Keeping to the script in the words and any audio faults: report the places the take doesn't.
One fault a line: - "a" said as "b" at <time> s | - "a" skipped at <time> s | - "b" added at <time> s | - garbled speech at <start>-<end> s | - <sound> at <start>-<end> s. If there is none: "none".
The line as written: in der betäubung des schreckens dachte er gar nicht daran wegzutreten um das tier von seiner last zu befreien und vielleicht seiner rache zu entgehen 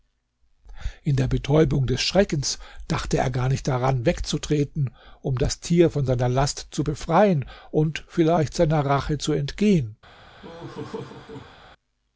- laugh at 10.4-11.6 s